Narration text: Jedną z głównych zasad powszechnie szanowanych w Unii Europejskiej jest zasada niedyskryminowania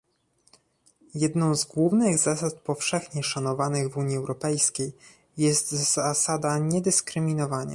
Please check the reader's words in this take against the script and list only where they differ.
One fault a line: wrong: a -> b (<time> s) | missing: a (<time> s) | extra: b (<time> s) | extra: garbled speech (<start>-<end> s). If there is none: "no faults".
no faults